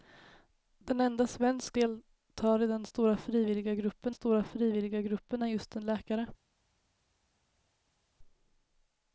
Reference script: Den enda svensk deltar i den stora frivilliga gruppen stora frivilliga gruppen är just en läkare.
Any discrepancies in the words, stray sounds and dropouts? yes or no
no